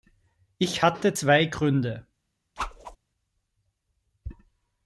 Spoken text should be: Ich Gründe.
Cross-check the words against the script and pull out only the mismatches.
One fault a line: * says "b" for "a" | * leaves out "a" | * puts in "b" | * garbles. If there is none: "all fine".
* puts in "hatte zwei"